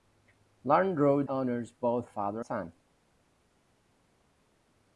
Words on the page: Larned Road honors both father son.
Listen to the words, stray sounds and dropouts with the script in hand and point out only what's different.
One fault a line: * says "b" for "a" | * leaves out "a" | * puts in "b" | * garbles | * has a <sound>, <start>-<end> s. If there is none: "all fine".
all fine